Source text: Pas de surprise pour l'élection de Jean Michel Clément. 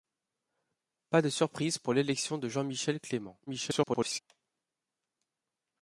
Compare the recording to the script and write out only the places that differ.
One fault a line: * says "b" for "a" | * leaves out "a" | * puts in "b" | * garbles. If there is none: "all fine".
* garbles